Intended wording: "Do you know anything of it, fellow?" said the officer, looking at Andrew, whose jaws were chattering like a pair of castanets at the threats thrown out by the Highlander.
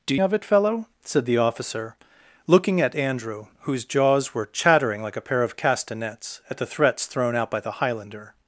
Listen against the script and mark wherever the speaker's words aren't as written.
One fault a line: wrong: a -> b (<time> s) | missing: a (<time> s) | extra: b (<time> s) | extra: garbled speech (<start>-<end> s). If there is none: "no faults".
missing: you know anything (0.1 s)